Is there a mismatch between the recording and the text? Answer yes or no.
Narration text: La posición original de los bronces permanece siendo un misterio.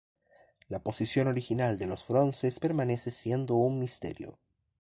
no